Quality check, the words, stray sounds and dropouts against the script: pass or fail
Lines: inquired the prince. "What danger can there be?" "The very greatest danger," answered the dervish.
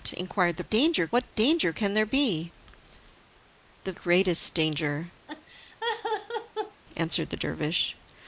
fail